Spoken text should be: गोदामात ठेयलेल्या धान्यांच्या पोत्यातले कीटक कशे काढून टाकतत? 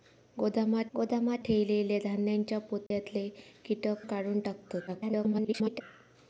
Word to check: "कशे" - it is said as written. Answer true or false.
false